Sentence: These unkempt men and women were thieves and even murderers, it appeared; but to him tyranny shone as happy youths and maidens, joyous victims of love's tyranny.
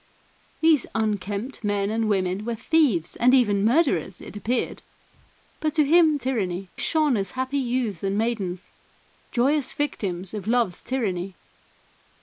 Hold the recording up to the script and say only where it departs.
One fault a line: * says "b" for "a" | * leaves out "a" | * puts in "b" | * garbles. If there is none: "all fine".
all fine